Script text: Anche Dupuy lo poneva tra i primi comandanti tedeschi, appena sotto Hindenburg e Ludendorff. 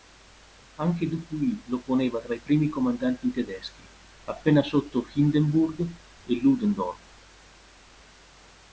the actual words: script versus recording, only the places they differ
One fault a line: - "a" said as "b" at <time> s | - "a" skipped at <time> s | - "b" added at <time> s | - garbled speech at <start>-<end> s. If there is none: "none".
none